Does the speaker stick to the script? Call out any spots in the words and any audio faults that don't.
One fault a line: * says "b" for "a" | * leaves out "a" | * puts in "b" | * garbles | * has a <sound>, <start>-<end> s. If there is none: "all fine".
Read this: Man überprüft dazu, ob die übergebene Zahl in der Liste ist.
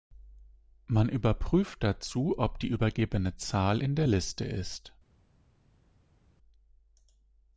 all fine